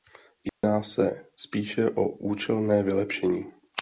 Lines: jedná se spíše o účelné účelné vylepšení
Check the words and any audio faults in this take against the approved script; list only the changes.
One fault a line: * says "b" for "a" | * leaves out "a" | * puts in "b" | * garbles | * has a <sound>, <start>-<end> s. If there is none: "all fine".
* has a dropout, 0.5-0.6 s
* leaves out "účelné"